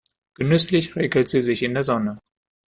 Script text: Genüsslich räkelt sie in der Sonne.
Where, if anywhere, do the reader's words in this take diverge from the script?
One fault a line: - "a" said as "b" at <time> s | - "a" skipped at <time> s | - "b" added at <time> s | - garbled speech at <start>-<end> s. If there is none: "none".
- "sich" added at 1.4 s